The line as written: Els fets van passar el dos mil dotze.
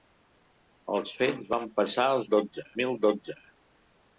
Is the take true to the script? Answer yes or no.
no